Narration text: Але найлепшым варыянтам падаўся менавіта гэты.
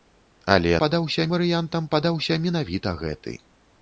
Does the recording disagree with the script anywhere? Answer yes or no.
yes